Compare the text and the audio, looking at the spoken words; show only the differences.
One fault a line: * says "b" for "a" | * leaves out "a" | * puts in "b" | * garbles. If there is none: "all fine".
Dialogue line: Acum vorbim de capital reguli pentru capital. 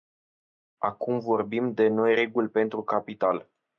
* says "noi" for "capital"